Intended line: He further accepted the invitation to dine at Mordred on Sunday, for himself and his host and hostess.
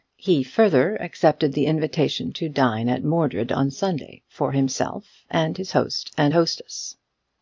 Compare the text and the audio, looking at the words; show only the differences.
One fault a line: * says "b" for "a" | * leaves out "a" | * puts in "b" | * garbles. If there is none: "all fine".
all fine